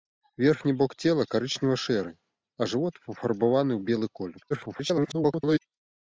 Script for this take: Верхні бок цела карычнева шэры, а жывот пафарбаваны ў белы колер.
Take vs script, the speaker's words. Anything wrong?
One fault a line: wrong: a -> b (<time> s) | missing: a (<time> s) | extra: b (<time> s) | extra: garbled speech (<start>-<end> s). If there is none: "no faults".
extra: garbled speech (4.5-5.6 s)